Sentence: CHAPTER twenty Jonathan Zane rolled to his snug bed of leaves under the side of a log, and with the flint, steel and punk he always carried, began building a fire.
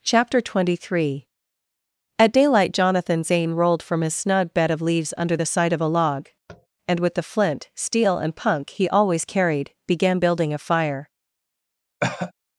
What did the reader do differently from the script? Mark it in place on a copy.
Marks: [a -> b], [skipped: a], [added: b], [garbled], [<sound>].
CHAPTER twenty [added: three At daylight] Jonathan Zane rolled [to -> from] his snug bed of leaves under the side of a log, [tap] and with the flint, steel and punk he always carried, began building a fire. [cough]